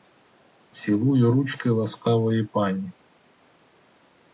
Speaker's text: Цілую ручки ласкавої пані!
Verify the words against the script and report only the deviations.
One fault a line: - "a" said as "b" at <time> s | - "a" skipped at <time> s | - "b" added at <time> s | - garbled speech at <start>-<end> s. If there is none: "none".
none